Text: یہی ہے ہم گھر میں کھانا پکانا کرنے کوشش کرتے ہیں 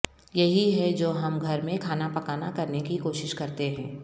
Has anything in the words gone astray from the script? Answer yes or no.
yes